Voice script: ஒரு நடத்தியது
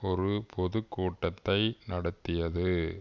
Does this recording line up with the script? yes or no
no